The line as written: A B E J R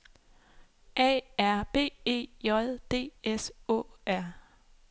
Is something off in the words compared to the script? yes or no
yes